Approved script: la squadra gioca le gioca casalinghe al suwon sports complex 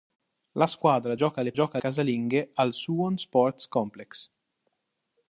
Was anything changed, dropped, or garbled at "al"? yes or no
no